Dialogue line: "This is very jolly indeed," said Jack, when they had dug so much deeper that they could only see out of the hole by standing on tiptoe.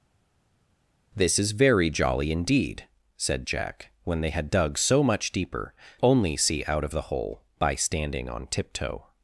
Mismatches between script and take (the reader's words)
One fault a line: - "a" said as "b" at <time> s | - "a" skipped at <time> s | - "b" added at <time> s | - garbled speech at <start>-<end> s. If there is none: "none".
- "that they could" skipped at 5.7 s